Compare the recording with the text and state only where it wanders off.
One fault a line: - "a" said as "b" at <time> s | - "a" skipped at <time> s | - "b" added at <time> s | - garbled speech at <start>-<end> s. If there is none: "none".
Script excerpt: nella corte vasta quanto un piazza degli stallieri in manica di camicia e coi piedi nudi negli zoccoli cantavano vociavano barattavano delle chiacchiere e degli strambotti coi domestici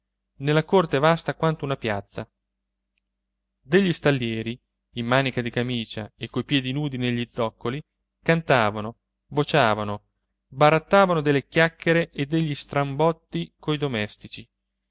- "un" said as "una" at 1.6 s